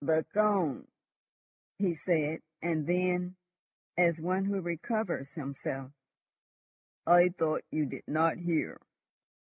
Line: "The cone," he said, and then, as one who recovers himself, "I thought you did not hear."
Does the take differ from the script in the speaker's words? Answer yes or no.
no